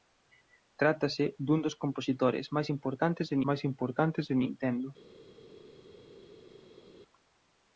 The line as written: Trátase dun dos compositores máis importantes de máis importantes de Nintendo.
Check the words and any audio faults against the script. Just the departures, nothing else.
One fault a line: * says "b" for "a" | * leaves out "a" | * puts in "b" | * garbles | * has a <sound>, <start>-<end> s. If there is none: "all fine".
all fine